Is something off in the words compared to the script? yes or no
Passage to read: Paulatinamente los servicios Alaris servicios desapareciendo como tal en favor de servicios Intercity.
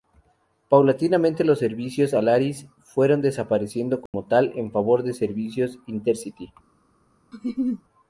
yes